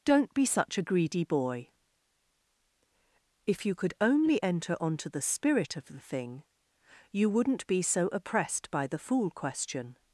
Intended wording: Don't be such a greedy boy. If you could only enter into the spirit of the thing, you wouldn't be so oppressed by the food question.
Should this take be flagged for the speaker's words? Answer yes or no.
yes